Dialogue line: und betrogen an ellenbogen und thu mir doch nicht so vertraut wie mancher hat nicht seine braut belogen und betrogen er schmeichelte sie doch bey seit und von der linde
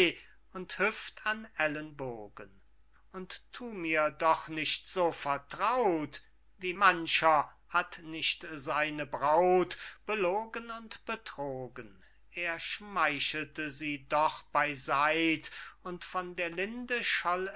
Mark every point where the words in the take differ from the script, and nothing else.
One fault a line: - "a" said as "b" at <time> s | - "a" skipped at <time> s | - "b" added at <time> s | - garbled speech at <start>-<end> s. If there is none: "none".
- "betrogen" said as "hüft" at 0.8 s